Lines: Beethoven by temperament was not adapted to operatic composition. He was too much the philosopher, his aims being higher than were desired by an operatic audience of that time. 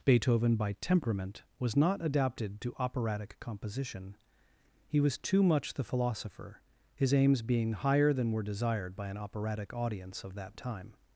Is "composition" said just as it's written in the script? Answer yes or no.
yes